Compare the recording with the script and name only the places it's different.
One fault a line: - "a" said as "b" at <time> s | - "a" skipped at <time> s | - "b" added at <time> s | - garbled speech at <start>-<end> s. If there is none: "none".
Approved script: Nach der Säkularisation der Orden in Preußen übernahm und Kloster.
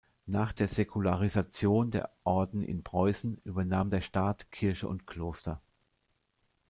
- "der Staat Kirche" added at 3.9 s